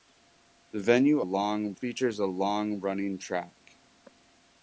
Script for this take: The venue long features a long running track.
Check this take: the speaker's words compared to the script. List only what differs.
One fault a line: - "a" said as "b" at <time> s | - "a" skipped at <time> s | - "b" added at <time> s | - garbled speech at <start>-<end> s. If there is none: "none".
none